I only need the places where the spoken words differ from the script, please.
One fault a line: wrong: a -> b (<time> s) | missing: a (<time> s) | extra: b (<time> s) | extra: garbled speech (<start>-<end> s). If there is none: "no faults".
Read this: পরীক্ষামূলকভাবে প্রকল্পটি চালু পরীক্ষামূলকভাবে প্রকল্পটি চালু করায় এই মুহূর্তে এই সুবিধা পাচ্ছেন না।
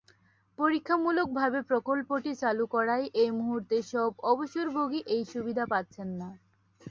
missing: পরীক্ষামূলকভাবে প্রকল্পটি চালু (2.6 s)
extra: সব অবসরভোগী (3.9 s)